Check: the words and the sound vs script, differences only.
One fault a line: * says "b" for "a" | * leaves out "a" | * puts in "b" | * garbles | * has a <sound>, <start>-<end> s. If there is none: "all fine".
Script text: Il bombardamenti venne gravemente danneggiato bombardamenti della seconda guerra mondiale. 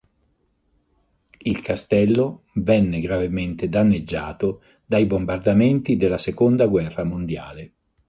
* says "castello" for "bombardamenti"
* puts in "dai"